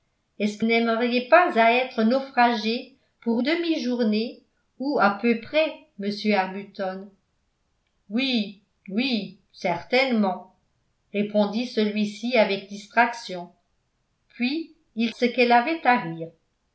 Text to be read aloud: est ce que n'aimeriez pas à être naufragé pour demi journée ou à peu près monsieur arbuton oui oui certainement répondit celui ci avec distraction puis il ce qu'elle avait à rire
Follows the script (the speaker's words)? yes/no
yes